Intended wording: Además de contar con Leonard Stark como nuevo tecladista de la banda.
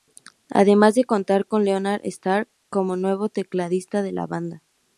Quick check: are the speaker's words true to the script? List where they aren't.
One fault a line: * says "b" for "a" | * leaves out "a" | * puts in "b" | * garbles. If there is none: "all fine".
all fine